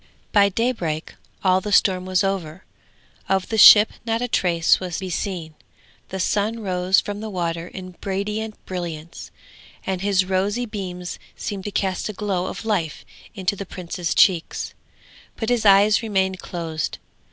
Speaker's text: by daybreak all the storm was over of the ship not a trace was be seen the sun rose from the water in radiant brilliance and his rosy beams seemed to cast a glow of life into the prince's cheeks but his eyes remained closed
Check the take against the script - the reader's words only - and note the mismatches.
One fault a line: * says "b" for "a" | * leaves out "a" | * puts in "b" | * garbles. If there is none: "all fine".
all fine